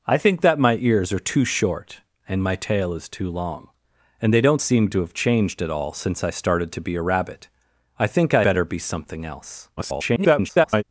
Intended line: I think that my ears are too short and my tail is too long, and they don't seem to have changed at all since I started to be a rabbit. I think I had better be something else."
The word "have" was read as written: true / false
true